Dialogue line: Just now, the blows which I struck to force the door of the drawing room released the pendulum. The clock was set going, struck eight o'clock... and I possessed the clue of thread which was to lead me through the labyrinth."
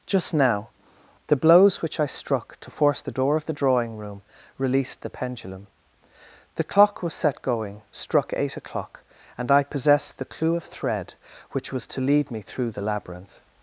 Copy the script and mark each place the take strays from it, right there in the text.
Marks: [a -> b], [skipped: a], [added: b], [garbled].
Just now, the blows which I struck to force the door of the drawing room released the pendulum. The clock was set going, struck eight o'clock... and I possessed the clue of thread which was to lead me through the labyrinth."